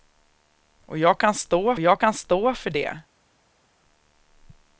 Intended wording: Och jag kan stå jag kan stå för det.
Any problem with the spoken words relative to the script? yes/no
no